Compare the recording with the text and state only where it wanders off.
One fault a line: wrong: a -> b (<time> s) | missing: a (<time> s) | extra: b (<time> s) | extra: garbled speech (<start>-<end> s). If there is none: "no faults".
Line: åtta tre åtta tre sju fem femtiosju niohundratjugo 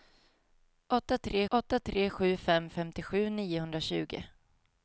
no faults